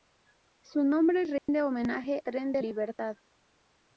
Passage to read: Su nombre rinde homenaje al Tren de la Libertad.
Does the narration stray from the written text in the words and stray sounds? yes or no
yes